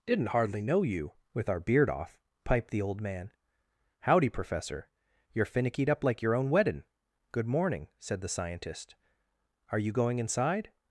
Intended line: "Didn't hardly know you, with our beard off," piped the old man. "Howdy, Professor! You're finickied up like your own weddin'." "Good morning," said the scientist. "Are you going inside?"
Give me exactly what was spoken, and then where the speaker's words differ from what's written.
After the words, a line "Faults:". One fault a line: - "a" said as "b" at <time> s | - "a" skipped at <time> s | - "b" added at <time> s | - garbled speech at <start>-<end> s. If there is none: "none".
"Didn't hardly know you, with our beard off," piped the old man. "Howdy, Professor! You're finickied up like your own weddin'." "Good morning," said the scientist. "Are you going inside?"
Faults:
none